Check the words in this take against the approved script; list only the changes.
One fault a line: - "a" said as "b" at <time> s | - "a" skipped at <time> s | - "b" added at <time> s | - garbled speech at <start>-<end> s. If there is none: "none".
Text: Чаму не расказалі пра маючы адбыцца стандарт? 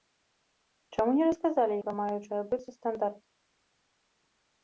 none